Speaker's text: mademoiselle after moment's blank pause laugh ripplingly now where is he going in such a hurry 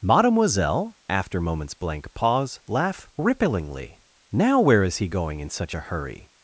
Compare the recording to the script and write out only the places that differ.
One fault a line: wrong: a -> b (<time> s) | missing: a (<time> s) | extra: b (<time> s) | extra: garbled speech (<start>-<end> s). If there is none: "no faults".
no faults